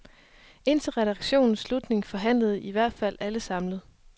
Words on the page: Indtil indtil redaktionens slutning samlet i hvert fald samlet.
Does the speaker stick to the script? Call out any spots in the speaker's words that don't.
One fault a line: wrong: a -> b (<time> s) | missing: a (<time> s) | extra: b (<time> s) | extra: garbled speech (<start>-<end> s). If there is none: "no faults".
missing: indtil (0.9 s)
wrong: samlet -> forhandlede (2.0 s)
extra: alle (3.2 s)